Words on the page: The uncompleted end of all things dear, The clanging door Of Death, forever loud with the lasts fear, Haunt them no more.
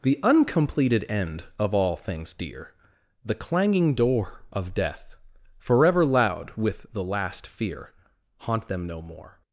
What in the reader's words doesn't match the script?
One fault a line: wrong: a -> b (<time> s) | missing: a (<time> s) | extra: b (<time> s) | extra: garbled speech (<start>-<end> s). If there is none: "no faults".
wrong: lasts -> last (7.0 s)